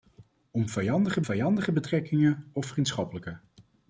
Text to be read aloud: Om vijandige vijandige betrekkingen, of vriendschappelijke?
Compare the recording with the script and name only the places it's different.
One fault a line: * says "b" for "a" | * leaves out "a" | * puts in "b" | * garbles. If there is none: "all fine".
all fine